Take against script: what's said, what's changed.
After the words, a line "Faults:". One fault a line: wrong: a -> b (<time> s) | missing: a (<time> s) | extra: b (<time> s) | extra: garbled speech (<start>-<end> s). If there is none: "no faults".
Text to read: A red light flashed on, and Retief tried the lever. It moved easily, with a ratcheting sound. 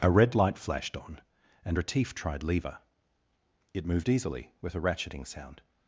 A red light flashed on, and Retief tried lever. It moved easily, with a ratcheting sound.
Faults:
missing: the (2.4 s)